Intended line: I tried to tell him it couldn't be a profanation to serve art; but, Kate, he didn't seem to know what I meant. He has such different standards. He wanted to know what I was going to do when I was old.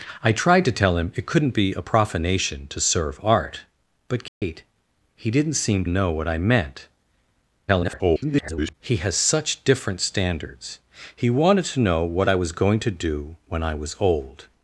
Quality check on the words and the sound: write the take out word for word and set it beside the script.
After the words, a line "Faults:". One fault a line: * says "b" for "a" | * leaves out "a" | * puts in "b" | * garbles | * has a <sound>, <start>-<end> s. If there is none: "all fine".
I tried to tell him it couldn't be a profanation to serve art; but, Kate, he didn't seem know what I meant. [garbled] He has such different standards. He wanted to know what I was going to do when I was old.
Faults:
* has a dropout, 4.3-4.4 s
* leaves out "to"
* garbles